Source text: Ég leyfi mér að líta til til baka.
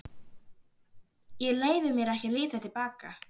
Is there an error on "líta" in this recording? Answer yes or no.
no